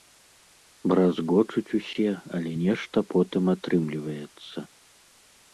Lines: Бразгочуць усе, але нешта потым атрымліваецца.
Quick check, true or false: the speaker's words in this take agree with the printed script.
true